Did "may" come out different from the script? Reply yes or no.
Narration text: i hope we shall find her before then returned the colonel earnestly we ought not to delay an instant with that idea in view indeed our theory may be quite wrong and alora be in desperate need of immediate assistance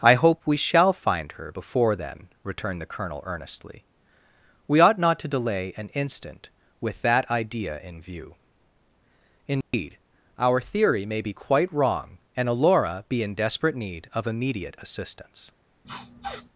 no